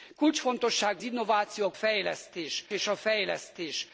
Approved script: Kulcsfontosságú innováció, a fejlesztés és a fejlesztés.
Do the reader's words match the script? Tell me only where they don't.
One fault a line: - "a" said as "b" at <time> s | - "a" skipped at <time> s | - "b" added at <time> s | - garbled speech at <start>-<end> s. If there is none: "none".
none